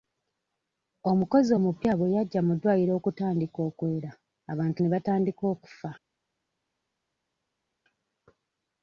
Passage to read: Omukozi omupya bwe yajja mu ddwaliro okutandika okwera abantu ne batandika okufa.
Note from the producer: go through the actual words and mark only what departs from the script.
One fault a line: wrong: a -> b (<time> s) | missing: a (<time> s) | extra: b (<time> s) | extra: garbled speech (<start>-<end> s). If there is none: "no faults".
no faults